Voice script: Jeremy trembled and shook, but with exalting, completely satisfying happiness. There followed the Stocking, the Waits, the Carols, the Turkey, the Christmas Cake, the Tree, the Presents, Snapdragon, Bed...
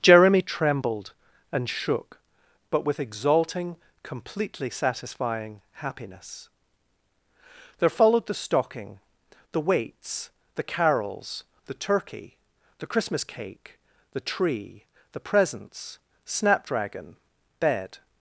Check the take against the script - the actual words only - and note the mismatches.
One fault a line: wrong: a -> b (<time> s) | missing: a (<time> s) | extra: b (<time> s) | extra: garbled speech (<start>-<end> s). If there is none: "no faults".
no faults